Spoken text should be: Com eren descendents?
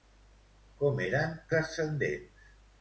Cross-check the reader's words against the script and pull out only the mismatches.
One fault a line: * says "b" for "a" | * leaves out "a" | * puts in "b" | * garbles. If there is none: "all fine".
all fine